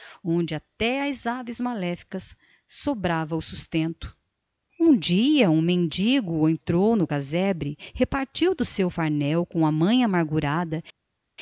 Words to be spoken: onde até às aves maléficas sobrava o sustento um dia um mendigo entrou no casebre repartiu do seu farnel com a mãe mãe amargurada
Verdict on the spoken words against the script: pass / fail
fail